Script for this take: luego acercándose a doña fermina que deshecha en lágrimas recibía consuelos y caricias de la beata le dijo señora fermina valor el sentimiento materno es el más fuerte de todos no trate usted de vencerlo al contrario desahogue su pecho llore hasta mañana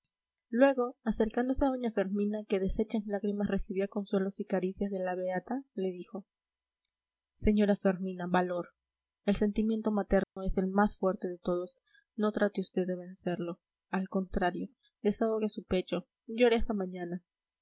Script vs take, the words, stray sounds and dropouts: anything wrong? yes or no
yes